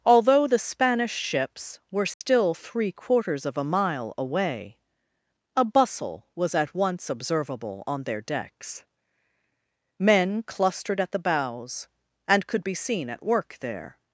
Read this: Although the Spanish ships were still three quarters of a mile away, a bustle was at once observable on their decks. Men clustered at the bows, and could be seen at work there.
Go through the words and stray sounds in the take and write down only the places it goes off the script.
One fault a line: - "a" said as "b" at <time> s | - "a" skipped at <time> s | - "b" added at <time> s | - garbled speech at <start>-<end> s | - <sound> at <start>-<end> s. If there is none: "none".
- dropout at 2.1-2.2 s